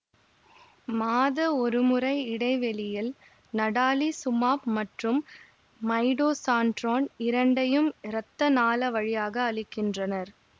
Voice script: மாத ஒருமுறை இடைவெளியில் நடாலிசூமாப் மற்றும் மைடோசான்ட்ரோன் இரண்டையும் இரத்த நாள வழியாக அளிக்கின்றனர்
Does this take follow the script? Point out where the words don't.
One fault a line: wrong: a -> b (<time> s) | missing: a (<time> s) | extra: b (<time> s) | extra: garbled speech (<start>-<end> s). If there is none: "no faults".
no faults